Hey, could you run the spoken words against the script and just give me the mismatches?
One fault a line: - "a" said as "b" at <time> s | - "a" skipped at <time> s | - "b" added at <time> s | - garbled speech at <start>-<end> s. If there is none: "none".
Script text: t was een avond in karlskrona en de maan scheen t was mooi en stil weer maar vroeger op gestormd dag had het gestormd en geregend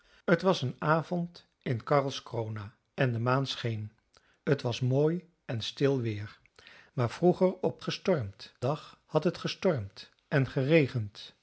none